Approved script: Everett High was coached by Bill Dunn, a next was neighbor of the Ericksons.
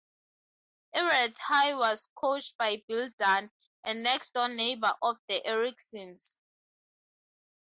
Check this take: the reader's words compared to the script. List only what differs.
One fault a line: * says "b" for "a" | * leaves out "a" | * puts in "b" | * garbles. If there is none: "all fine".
* says "door" for "was"